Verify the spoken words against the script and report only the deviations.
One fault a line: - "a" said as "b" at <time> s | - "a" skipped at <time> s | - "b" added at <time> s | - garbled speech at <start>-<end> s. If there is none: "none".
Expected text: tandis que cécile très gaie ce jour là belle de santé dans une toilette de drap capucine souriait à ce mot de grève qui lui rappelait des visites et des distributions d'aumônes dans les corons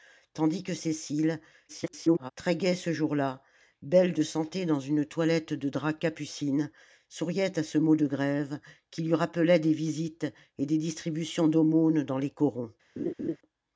- garbled speech at 1.7-2.3 s